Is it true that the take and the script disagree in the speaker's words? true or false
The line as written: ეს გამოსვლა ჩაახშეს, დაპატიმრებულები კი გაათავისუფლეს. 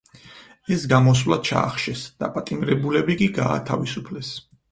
false